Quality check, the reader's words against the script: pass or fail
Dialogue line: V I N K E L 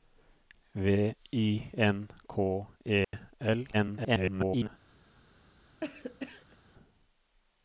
fail